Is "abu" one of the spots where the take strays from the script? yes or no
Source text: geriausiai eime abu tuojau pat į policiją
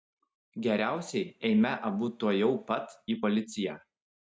no